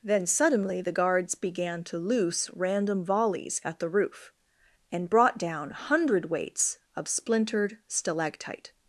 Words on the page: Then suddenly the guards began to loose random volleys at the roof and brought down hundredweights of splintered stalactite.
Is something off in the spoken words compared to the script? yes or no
no